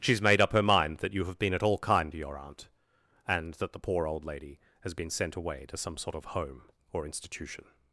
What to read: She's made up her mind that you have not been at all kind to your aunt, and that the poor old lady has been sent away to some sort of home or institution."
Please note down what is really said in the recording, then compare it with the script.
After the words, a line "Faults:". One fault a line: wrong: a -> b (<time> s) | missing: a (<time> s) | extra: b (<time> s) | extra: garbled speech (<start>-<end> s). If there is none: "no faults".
She's made up her mind that you have been at all kind to your aunt, and that the poor old lady has been sent away to some sort of home or institution."
Faults:
missing: not (1.4 s)